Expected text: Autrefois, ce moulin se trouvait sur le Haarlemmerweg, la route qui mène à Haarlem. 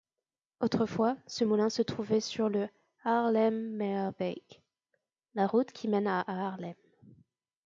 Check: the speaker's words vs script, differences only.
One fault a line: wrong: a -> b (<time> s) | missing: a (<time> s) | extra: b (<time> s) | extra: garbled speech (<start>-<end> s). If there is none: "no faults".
no faults